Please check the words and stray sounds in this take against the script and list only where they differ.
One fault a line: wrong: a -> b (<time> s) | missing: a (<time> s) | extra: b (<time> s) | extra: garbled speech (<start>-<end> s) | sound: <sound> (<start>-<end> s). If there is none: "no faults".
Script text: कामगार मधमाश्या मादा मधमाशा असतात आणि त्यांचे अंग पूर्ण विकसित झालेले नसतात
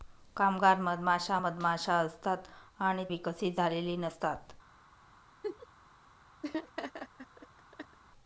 missing: मादा (1.4 s)
missing: त्यांचे अंग पूर्ण (3.1 s)
sound: laugh (5.4-5.7 s)
sound: laugh (6.4-8.0 s)